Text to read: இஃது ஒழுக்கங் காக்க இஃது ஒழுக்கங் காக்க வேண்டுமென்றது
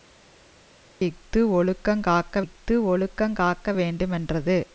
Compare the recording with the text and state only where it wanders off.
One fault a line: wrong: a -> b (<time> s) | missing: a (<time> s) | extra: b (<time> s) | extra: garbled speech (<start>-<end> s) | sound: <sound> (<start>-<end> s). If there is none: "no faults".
no faults